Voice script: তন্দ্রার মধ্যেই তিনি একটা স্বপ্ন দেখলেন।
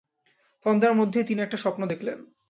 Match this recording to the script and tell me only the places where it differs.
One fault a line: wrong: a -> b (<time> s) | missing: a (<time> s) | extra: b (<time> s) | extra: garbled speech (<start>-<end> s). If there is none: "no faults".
no faults